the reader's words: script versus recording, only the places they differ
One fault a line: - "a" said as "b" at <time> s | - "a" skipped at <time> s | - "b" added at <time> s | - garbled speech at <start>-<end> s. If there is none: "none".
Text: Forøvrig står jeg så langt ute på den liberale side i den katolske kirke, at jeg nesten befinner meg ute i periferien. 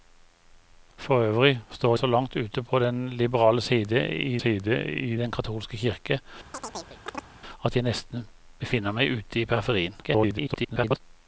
- "jeg" skipped at 2.0 s
- "side i" added at 4.3 s
- garbled speech at 10.0-11.0 s